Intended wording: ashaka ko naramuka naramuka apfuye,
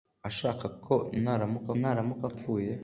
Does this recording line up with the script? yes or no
yes